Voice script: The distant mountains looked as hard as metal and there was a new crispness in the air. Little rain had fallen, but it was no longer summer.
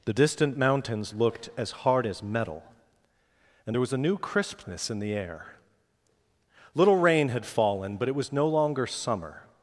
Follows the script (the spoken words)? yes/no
yes